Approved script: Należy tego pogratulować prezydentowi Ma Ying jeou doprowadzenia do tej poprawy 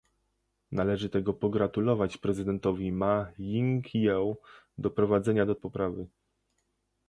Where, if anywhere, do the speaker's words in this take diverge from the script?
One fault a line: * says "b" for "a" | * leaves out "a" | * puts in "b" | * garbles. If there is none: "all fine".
* leaves out "tej"